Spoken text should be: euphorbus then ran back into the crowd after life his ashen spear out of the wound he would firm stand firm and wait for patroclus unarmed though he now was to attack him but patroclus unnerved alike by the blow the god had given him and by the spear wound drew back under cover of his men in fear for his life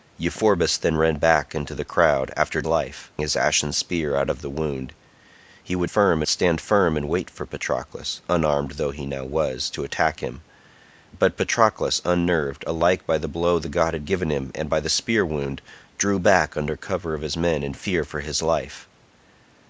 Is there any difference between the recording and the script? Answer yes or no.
no